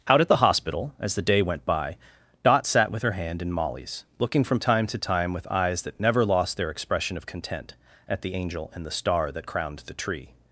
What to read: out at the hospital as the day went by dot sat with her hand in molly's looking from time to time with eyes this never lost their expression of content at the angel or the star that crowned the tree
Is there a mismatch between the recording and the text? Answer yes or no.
yes